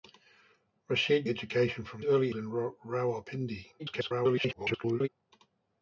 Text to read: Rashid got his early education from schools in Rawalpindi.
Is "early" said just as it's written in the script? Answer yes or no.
no